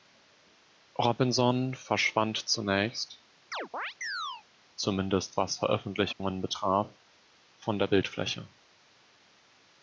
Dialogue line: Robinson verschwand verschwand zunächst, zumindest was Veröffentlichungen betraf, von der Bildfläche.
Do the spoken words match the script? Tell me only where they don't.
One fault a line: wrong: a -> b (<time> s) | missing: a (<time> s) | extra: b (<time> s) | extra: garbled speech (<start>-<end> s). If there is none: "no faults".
missing: verschwand (2.4 s)